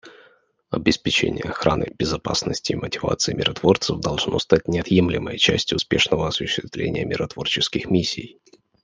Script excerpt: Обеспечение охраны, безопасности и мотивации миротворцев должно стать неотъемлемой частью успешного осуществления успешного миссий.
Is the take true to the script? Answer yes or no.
no